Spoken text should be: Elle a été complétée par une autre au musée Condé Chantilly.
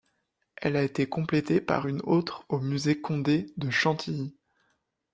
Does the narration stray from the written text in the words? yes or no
yes